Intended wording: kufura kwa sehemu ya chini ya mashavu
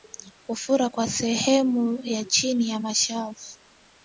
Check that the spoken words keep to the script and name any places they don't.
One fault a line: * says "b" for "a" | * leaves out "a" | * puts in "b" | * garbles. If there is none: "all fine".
all fine